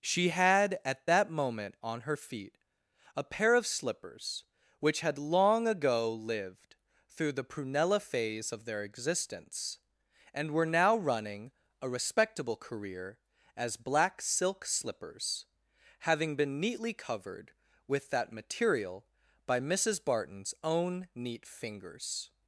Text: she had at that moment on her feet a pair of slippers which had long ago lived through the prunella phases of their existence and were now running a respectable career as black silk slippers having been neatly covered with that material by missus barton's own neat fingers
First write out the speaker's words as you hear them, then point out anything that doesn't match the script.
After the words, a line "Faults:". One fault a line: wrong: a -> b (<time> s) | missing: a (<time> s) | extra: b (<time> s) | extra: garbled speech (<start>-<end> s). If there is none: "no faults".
she had at that moment on her feet a pair of slippers which had long ago lived through the prunella phase of their existence and were now running a respectable career as black silk slippers having been neatly covered with that material by missus barton's own neat fingers
Faults:
wrong: phases -> phase (8.0 s)